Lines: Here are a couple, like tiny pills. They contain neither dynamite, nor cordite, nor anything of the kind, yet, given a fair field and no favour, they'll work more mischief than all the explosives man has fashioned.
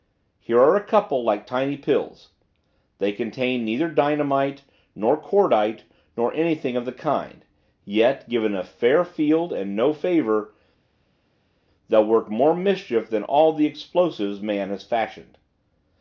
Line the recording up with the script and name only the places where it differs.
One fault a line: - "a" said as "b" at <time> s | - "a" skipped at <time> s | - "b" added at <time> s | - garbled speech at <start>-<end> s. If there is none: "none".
none